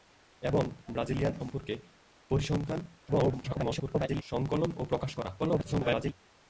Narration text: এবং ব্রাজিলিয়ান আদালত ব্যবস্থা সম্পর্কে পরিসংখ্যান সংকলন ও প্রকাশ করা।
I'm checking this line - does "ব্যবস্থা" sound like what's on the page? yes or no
no